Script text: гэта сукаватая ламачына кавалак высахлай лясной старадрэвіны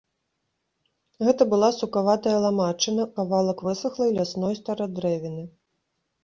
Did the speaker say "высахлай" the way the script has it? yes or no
yes